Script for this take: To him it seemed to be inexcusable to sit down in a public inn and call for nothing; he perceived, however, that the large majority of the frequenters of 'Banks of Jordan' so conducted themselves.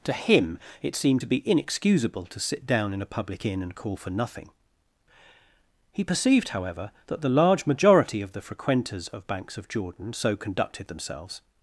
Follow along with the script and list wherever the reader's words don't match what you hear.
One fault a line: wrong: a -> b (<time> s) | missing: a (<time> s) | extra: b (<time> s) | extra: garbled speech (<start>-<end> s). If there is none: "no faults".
no faults